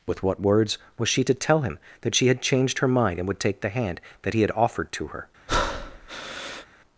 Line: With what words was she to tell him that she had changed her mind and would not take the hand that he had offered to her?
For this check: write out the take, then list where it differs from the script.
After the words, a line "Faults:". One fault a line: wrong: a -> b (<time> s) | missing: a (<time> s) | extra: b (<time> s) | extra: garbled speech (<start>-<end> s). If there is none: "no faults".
With what words was she to tell him that she had changed her mind and would take the hand that he had offered to her?
Faults:
missing: not (3.4 s)